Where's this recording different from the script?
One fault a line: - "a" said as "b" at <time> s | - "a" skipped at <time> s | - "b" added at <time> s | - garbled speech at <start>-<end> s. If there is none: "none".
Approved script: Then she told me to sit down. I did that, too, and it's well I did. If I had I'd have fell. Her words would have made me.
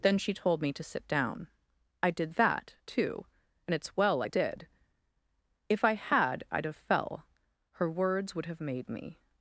none